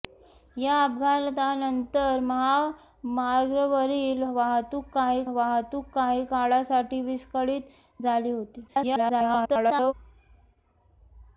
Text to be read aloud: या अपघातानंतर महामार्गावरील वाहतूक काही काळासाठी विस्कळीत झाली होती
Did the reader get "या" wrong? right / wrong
right